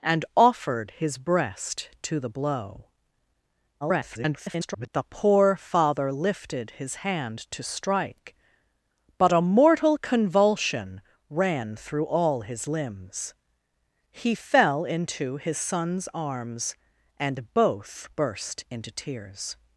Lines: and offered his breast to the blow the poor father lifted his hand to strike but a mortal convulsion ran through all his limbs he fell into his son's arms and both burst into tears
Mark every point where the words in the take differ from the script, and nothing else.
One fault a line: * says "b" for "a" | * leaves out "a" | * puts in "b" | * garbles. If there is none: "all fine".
* garbles